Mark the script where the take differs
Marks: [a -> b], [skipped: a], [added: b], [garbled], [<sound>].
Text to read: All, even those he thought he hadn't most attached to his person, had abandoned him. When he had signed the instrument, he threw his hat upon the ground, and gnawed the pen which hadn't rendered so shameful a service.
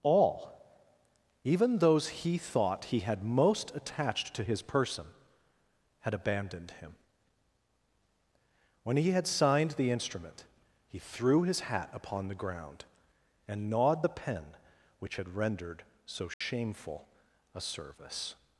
All, even those he thought he [hadn't -> had] most attached to his person, had abandoned him. When he had signed the instrument, he threw his hat upon the ground, and gnawed the pen which [hadn't -> had] rendered so shameful [dropout] a service.